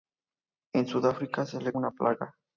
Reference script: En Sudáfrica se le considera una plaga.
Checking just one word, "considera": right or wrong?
wrong